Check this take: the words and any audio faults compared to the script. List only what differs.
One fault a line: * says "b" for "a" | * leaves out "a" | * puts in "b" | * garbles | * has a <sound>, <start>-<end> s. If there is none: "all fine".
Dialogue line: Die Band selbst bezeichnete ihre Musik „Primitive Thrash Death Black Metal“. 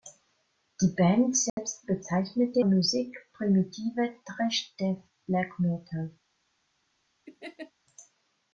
* has a dropout, 1.5-1.6 s
* leaves out "ihre"
* has a laugh, 7.3-7.7 s